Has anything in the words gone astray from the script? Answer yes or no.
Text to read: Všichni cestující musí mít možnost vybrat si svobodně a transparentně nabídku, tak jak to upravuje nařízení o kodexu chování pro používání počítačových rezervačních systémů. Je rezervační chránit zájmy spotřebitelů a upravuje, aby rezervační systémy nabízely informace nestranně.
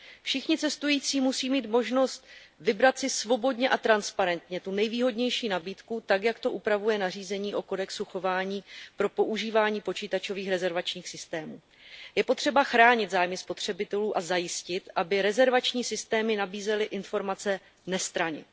yes